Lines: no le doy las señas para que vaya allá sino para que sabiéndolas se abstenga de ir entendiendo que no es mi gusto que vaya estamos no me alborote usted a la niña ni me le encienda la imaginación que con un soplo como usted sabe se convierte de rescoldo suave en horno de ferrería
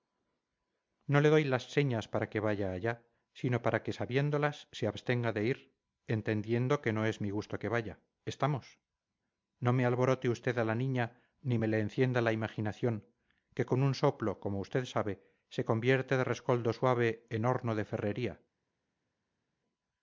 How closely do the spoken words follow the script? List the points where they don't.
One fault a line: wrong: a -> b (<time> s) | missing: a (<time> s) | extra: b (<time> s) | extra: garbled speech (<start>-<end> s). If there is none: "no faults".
no faults